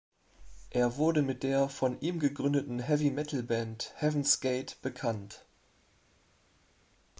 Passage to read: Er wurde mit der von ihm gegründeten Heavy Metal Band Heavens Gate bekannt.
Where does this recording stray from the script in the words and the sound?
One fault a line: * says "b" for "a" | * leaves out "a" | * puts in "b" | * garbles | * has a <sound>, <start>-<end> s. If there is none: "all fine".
all fine